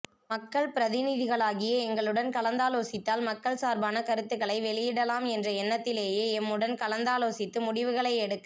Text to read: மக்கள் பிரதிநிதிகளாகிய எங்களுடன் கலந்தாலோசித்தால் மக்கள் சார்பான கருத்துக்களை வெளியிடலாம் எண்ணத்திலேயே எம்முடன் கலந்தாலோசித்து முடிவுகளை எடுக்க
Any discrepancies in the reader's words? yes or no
yes